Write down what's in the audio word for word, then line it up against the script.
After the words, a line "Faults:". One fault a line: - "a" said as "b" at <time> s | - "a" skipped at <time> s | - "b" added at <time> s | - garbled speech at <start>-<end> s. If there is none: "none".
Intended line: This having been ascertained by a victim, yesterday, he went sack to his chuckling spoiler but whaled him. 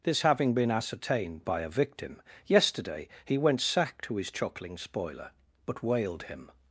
This having been ascertained by a victim, yesterday, he went sack to his chuckling spoiler but whaled him.
Faults:
none